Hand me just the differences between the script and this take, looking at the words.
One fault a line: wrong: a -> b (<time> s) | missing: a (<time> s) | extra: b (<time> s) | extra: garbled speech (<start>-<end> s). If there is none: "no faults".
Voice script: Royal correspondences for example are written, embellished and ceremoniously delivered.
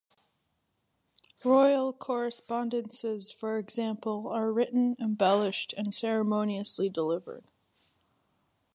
no faults